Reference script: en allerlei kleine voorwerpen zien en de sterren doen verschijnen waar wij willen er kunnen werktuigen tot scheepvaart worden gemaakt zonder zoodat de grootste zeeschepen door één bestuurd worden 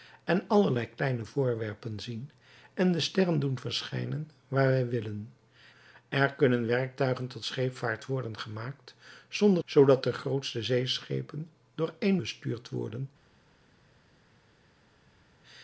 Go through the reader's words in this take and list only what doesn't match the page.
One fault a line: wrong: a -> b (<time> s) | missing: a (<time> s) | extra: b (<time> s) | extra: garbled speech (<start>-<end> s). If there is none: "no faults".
no faults